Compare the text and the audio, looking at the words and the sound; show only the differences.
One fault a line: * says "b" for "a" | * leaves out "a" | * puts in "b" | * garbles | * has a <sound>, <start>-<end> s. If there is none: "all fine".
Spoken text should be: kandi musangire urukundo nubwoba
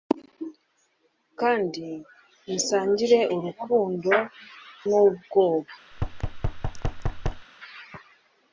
* has a thud, 5.9-7.5 s